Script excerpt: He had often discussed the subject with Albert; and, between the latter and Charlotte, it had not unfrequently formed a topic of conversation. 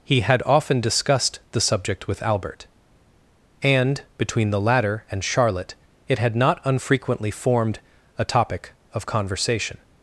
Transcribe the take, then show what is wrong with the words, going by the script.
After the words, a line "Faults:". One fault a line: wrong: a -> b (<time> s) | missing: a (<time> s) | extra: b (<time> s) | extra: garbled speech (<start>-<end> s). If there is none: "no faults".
He had often discussed the subject with Albert; and, between the latter and Charlotte, it had not unfrequently formed a topic of conversation.
Faults:
no faults